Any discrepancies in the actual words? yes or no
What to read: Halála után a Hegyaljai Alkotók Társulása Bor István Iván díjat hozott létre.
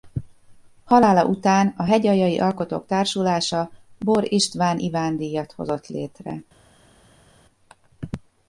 no